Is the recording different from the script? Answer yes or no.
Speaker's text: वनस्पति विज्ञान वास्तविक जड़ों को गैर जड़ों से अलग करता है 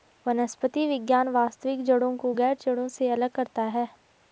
no